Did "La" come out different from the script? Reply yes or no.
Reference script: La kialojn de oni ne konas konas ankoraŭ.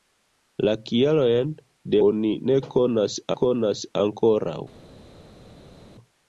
no